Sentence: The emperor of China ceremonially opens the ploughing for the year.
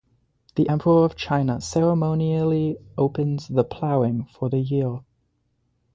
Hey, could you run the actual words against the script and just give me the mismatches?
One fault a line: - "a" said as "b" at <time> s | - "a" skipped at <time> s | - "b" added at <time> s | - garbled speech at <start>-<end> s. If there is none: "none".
none